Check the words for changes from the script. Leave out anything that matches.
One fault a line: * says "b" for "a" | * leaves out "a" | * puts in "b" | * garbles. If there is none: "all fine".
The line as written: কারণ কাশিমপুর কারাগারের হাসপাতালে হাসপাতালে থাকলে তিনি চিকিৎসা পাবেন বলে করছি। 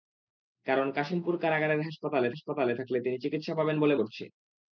all fine